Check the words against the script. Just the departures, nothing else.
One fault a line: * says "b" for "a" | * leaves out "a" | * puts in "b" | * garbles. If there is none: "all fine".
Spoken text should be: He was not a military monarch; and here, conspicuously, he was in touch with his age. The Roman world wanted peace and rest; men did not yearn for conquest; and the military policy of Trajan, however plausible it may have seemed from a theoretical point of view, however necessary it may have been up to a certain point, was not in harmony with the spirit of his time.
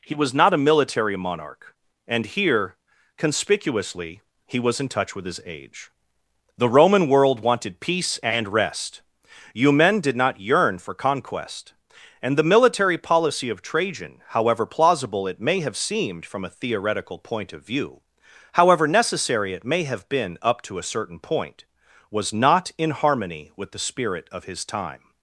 * puts in "you"